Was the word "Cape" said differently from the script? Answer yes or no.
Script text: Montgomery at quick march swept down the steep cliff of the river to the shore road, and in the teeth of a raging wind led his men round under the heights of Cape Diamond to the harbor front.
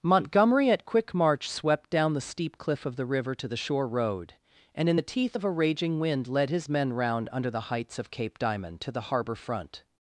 no